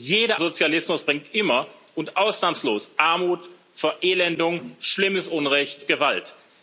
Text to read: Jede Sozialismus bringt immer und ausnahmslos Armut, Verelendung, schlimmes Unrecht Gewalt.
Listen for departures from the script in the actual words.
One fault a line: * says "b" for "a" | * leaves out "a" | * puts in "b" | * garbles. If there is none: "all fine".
all fine